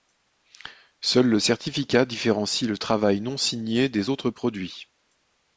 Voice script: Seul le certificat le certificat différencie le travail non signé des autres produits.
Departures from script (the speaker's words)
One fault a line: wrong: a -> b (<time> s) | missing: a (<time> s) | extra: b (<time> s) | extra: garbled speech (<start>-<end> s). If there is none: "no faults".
missing: le certificat (2.0 s)